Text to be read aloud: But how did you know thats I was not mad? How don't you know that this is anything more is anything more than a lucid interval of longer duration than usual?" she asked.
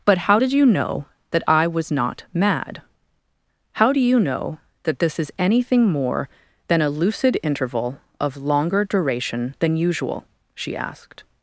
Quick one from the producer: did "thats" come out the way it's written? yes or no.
no